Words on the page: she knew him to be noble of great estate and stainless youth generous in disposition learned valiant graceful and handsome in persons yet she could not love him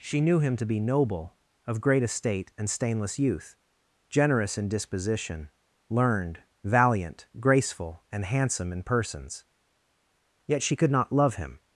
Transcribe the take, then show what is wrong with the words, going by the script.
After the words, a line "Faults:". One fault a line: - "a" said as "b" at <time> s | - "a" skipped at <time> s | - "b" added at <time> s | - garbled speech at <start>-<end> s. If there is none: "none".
she knew him to be noble of great estate and stainless youth generous in disposition learned valiant graceful and handsome in persons yet she could not love him
Faults:
none